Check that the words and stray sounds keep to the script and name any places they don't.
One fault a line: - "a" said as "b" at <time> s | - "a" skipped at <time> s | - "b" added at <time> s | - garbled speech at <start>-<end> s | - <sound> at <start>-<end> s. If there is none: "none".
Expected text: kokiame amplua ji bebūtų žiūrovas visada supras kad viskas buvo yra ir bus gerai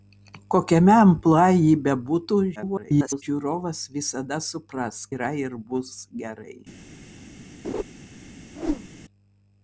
- garbled speech at 2.6-3.2 s
- "kad viskas buvo" skipped at 5.0 s
- laugh at 7.6-7.8 s
- whoosh at 8.5-8.9 s